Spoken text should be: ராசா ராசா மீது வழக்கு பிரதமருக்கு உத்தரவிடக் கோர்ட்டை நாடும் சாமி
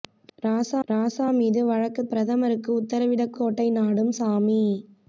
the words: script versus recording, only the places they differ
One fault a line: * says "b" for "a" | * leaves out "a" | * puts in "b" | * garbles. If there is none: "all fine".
all fine